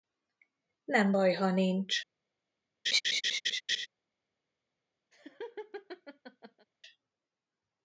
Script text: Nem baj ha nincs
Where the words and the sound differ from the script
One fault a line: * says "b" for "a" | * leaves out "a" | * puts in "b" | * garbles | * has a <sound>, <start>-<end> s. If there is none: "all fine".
* has a laugh, 2.9-3.9 s
* has a laugh, 5.1-6.7 s